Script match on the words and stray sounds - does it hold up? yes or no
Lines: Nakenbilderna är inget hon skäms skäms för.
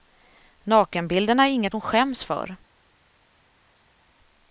no